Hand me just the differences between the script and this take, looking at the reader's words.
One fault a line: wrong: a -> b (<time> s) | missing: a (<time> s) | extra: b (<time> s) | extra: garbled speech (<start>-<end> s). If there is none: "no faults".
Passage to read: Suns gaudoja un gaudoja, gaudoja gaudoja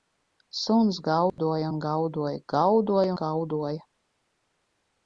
no faults